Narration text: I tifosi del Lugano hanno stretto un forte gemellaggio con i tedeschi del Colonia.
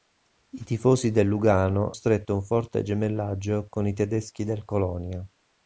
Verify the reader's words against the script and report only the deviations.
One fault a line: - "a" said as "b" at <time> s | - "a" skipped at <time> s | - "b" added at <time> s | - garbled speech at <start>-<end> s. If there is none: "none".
- "hanno" skipped at 1.9 s